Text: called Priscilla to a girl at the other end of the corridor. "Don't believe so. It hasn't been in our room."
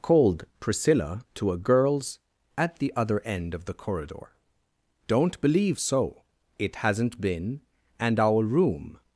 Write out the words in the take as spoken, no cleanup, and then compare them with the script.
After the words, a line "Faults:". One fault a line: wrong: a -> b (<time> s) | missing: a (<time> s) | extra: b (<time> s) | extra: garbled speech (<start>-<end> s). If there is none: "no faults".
called Priscilla to a girls at the other end of the corridor. "Don't believe so. It hasn't been and our room."
Faults:
wrong: girl -> girls (1.6 s)
wrong: in -> and (8.0 s)